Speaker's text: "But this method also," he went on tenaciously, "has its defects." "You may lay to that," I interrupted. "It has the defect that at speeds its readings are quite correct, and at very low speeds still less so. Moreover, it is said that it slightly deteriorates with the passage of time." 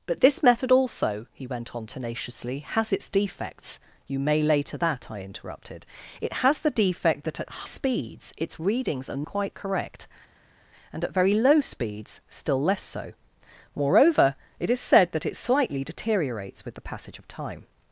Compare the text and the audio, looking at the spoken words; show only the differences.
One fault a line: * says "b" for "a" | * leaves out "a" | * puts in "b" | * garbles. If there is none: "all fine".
all fine